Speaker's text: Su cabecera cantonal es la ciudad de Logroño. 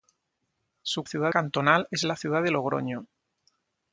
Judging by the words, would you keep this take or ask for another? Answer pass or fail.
fail